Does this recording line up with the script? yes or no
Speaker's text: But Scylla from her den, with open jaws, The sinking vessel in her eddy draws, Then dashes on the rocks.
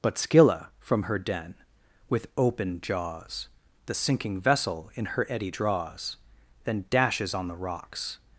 yes